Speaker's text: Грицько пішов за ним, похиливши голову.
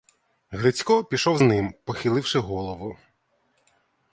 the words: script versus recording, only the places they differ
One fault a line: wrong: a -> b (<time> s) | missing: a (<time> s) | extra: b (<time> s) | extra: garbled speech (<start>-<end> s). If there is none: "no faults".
missing: за (1.4 s)